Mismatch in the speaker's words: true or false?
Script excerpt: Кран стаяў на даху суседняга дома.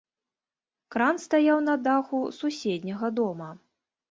false